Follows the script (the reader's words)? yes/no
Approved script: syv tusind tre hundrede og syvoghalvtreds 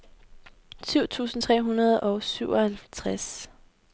yes